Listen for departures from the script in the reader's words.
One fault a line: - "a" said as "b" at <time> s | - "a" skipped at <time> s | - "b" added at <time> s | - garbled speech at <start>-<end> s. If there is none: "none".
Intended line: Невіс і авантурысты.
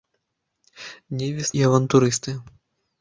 none